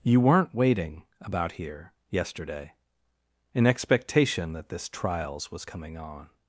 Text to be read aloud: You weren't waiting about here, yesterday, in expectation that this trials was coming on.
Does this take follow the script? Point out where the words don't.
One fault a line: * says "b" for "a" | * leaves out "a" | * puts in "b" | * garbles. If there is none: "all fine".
all fine